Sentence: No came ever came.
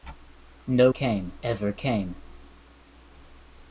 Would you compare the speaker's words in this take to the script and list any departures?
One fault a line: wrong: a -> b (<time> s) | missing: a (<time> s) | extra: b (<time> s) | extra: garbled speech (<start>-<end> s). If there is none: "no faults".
no faults